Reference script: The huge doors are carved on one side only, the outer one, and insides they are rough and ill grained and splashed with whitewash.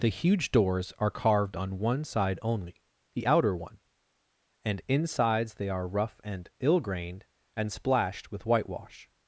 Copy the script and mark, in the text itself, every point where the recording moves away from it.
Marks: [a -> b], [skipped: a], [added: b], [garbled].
The huge doors are carved on one side only, the outer one, and insides they are rough and ill grained and splashed with whitewash.